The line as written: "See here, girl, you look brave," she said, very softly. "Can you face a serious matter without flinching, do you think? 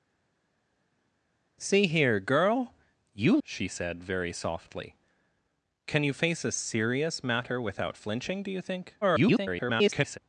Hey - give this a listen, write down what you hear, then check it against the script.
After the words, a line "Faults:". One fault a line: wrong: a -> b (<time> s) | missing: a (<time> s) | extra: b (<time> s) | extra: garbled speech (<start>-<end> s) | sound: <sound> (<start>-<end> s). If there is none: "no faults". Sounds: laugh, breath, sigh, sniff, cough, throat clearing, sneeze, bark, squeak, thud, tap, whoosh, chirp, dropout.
"See here, girl, you," she said, very softly. "Can you face a serious matter without flinching, do you think? [garbled]
Faults:
missing: look brave (3.4 s)
extra: garbled speech (9.0-10.2 s)